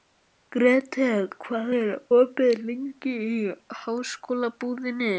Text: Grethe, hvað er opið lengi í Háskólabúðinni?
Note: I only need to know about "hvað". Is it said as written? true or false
true